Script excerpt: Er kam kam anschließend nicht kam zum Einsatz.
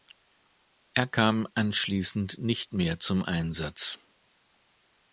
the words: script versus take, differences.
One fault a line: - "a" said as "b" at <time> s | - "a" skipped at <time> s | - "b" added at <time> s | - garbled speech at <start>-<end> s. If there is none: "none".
- "kam" skipped at 1.5 s
- "kam" said as "mehr" at 2.7 s